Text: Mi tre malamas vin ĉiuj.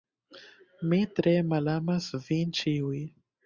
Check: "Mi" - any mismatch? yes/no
no